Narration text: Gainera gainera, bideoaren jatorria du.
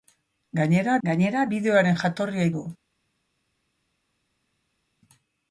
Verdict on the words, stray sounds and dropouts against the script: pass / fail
pass